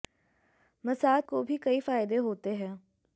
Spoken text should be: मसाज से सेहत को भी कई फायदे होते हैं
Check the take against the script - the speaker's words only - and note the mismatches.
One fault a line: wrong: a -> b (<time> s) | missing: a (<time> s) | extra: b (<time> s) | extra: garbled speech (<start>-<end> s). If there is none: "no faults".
missing: से सेहत (1.2 s)